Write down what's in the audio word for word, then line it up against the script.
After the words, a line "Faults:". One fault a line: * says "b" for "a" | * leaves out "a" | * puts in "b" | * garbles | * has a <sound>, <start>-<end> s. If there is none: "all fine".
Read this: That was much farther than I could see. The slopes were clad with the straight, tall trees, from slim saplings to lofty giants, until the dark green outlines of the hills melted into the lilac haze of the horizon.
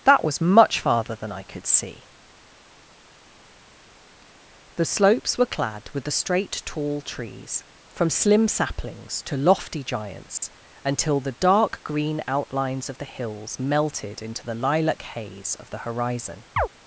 That was much farther than I could see. The slopes were clad with the straight, tall trees, from slim saplings to lofty giants, until the dark green outlines of the hills melted into the lilac haze of the horizon.
Faults:
* has a dropout, 10.4-10.4 s
* has a chirp, 16.6-16.7 s